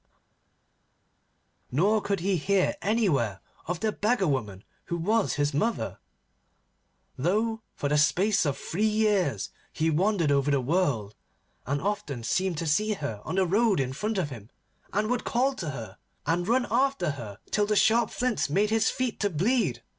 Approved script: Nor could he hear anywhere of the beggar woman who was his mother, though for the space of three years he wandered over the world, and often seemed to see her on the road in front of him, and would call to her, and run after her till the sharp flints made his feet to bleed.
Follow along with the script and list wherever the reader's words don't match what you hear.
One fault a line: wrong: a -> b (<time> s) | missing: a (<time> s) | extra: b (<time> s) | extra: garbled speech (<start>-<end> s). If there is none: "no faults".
no faults